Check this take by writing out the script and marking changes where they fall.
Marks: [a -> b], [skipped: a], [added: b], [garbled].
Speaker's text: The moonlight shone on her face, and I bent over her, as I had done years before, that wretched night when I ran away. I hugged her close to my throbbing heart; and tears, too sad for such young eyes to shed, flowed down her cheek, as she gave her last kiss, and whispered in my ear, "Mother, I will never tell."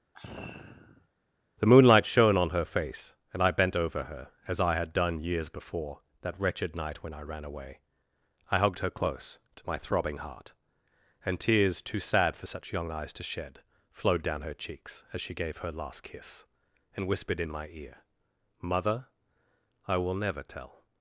The moonlight shone on her face, and I bent over her, as I had done years before, that wretched night when I ran away. I hugged her close to my throbbing heart; and tears, too sad for such young eyes to shed, flowed down her [cheek, -> cheeks] as she gave her last kiss, and whispered in my ear, "Mother, I will never tell."